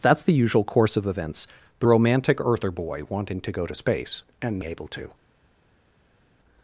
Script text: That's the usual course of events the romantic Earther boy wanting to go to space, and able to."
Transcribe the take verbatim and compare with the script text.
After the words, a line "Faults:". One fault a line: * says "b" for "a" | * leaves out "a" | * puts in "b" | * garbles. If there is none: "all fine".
That's the usual course of events the romantic Earther boy wanting to go to space, and able to."
Faults:
all fine